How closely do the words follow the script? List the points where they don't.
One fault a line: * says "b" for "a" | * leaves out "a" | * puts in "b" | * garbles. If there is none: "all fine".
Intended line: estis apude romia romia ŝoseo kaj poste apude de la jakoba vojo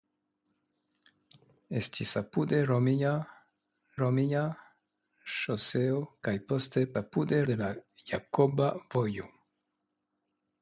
all fine